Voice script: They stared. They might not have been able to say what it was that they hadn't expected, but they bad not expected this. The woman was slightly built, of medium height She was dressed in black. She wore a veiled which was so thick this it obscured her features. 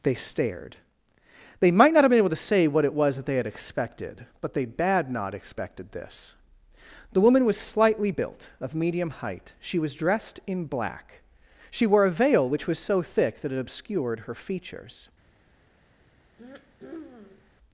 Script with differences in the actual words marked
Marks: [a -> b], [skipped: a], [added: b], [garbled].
They stared. They might not have been able to say what it was that they [hadn't -> had] expected, but they bad not expected this. The woman was slightly built, of medium height She was dressed in black. She wore a [veiled -> veil] which was so thick [this -> that] it obscured her features.